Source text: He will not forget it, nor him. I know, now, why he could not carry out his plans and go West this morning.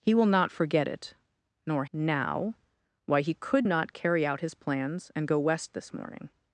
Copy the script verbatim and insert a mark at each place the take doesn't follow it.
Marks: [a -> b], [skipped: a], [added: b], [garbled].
He will not forget it, nor [skipped: him. I know,] now, why he could not carry out his plans and go West this morning.